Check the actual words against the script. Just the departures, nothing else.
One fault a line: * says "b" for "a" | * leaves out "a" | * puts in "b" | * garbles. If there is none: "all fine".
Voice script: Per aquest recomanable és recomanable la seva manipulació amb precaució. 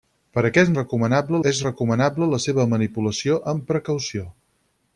all fine